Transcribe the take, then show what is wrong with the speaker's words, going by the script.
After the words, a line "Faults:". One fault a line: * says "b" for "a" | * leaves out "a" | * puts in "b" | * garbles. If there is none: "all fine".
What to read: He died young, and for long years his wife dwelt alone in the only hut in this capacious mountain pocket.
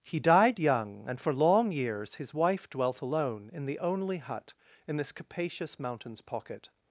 He died young, and for long years his wife dwelt alone in the only hut in this capacious mountains pocket.
Faults:
* says "mountains" for "mountain"